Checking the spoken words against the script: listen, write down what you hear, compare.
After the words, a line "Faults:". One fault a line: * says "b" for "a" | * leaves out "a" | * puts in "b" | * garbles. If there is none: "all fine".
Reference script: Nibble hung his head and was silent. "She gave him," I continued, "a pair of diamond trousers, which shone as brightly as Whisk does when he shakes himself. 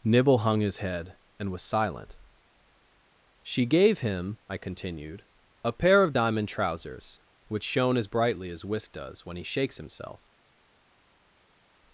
Nibble hung his head and was silent. "She gave him," I continued, "a pair of diamond trousers, which shone as brightly as Whisk does when he shakes himself.
Faults:
all fine